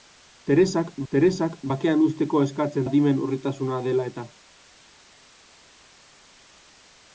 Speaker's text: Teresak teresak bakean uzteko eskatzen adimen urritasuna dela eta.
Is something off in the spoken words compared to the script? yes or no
no